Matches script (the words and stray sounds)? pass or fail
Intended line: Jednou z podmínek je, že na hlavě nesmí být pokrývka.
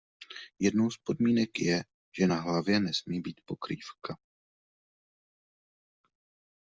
pass